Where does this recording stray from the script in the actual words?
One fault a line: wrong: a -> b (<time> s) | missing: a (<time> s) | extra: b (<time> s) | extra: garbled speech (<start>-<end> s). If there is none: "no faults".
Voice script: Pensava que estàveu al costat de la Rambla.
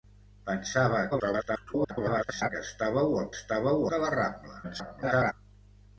extra: garbled speech (1.1-2.5 s)
wrong: costat -> estàveu (3.4 s)
extra: garbled speech (4.6-5.3 s)